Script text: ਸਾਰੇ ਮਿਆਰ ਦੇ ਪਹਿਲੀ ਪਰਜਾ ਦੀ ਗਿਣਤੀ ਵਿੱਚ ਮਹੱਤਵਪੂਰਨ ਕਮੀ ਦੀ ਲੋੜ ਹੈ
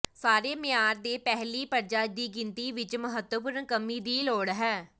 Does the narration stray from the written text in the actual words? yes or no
no